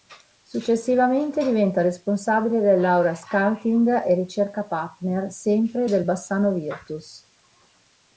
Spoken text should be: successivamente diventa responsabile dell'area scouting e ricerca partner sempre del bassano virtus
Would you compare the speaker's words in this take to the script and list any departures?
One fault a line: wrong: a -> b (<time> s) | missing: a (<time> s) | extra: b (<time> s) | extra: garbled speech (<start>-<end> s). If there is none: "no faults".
no faults